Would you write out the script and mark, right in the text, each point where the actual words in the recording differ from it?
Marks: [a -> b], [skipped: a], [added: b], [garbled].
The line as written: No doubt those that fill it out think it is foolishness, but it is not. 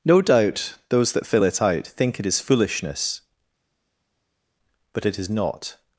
No doubt those that fill it out think it is foolishness, but it is not.